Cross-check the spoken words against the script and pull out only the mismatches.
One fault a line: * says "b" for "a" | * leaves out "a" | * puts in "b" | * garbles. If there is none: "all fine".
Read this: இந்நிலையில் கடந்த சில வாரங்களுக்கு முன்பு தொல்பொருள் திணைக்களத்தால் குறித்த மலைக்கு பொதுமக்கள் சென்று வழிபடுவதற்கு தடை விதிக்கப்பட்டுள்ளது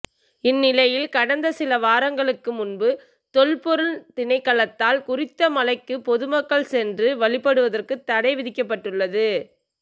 all fine